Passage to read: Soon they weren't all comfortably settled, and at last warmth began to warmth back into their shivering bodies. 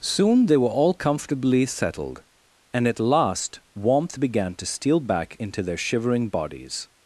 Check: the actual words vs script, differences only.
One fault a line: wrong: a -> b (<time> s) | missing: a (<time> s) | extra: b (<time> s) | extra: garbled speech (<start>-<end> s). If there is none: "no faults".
wrong: weren't -> were (0.6 s)
wrong: warmth -> steal (4.6 s)